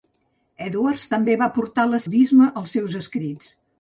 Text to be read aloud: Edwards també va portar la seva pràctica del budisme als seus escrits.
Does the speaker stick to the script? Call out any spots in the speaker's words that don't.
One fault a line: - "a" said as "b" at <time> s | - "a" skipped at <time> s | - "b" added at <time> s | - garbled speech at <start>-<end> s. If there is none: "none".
- "seva pràctica del" skipped at 2.0 s